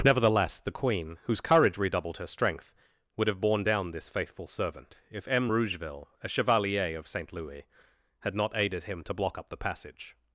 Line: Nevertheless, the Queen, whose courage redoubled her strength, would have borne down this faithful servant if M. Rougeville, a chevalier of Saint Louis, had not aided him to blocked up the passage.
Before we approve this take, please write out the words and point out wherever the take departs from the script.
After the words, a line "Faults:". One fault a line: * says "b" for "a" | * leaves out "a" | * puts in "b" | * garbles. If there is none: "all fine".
Nevertheless, the Queen, whose courage redoubled her strength, would have borne down this faithful servant if M. Rougeville, a chevalier of Saint Louis, had not aided him to block up the passage.
Faults:
* says "block" for "blocked"